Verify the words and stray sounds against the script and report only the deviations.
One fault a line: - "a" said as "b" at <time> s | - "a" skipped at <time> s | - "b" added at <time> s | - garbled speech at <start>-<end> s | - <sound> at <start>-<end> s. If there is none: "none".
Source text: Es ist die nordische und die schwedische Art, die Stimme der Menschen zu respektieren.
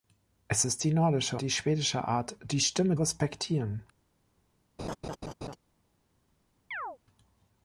- "und" skipped at 1.4 s
- "der Menschen zu" skipped at 3.0 s
- laugh at 4.8-5.6 s
- chirp at 6.7-7.0 s